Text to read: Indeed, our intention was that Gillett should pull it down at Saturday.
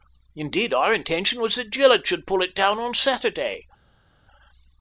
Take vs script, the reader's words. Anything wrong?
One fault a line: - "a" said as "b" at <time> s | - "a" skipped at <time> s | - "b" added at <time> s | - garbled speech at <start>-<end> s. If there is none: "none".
- "at" said as "on" at 2.8 s